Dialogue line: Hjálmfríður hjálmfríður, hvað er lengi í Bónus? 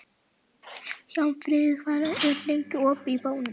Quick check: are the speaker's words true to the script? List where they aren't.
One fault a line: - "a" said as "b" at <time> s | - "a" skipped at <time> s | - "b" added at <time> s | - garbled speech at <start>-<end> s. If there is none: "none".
- "hjálmfríður" skipped at 1.8 s
- "opið" added at 2.9 s